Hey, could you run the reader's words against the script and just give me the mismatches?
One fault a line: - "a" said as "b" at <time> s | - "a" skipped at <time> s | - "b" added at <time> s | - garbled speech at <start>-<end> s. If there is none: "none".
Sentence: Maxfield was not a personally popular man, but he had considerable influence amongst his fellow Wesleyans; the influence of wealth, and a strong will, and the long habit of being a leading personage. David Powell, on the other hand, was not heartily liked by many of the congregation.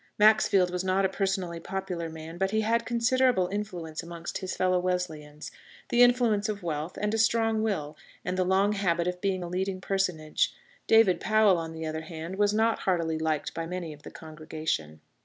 none